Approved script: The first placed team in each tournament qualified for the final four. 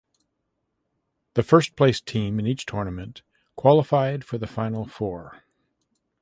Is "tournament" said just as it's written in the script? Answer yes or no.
yes